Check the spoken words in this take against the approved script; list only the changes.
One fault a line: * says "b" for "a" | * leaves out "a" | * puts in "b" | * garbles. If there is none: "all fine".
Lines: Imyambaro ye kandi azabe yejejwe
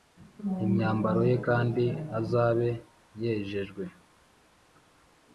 all fine